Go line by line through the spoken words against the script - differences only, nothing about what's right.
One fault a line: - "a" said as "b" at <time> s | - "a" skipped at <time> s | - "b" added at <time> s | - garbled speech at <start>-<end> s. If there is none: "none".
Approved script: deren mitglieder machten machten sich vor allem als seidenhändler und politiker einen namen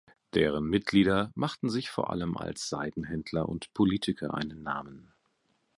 - "machten" skipped at 1.7 s